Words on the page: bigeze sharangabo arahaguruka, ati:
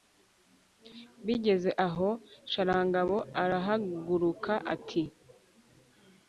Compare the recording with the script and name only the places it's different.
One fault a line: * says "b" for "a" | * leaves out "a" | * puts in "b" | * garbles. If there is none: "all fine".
* puts in "aho"